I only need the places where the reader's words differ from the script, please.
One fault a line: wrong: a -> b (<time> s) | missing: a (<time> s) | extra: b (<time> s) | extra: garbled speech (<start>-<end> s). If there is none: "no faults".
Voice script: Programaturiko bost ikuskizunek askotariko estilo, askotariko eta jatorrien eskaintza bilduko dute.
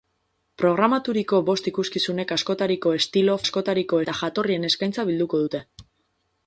no faults